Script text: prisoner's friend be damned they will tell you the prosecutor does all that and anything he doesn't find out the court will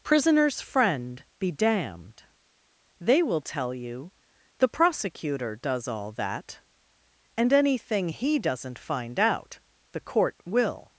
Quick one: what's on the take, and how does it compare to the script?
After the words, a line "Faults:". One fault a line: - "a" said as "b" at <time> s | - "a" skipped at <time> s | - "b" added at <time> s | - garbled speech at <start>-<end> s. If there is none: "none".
prisoner's friend be damned they will tell you the prosecutor does all that and anything he doesn't find out the court will
Faults:
none